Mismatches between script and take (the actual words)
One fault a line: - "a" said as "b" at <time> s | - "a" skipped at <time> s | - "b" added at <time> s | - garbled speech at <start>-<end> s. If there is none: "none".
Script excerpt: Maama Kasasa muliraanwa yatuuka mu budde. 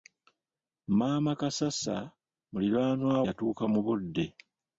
none